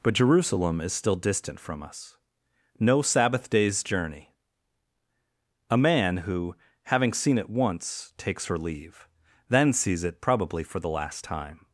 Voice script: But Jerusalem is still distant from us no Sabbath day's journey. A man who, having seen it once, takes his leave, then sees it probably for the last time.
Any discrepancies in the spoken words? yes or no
yes